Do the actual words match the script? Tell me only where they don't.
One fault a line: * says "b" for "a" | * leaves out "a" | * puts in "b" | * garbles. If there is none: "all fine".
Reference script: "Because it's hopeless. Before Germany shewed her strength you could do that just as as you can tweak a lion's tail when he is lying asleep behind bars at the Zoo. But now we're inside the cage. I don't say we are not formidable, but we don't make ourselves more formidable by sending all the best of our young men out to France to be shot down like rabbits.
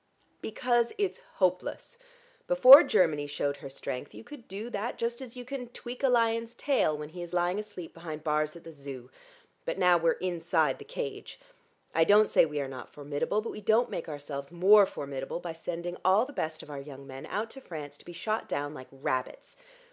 * leaves out "as"